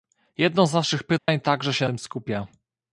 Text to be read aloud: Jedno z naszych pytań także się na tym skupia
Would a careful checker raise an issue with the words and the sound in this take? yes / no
yes